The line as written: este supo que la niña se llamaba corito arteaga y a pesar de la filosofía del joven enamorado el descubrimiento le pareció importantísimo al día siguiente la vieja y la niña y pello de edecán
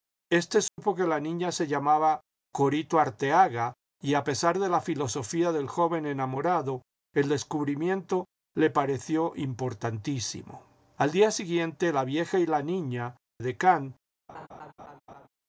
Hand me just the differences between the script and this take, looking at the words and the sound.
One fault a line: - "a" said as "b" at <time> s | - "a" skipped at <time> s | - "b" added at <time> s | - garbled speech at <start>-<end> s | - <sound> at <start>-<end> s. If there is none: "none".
- dropout at 0.7-0.8 s
- "y pello de" skipped at 13.2 s
- laugh at 14.3-15.3 s